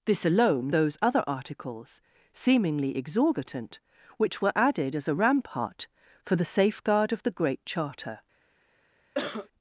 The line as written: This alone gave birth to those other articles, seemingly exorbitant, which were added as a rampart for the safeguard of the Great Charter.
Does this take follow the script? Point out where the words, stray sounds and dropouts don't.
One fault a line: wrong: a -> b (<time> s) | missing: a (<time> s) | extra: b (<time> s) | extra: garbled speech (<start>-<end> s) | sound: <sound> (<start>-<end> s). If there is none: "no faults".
missing: gave birth to (0.7 s)
sound: cough (9.1-9.5 s)